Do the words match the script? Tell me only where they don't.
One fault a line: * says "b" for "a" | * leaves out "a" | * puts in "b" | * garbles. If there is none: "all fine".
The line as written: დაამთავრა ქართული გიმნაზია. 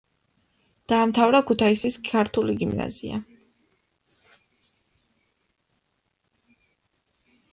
* puts in "ქუთაისის"